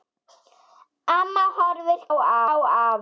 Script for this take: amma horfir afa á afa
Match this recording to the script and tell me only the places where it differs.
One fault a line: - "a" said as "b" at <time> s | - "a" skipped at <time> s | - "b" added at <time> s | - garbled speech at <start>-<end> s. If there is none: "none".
none